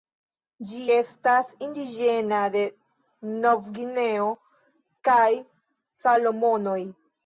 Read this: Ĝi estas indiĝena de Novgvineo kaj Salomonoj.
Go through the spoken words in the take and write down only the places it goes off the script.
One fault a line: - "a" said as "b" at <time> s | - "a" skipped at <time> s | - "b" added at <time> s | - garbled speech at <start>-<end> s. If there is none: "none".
none